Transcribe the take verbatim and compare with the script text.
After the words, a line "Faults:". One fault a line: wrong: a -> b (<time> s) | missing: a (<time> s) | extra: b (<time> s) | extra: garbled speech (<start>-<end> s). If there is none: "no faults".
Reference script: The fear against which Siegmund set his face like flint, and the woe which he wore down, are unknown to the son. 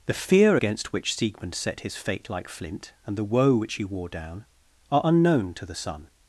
The fear against which Siegmund set his fate like flint, and the woe which he wore down, are unknown to the son.
Faults:
wrong: face -> fate (2.0 s)